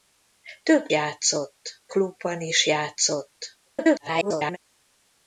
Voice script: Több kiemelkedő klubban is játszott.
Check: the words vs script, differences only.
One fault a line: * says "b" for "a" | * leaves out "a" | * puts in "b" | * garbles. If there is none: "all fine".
* says "játszott" for "kiemelkedő"
* garbles